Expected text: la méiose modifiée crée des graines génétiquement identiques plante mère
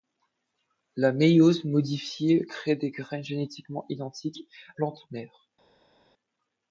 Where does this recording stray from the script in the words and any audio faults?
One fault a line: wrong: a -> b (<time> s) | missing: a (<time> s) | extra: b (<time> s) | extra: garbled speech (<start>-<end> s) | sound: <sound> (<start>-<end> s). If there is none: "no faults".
no faults